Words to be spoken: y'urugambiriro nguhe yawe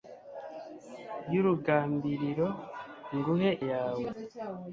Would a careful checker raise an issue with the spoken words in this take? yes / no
no